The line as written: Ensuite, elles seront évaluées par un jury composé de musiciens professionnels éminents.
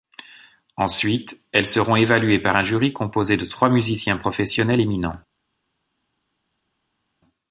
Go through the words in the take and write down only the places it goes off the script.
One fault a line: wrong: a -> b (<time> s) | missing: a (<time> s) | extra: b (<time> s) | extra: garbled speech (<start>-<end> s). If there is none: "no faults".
extra: trois (3.4 s)